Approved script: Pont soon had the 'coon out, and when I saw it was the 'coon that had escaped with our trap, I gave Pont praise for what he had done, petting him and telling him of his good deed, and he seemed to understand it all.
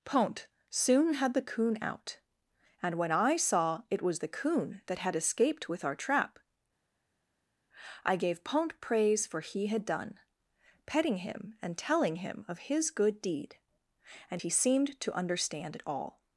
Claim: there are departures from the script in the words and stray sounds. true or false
true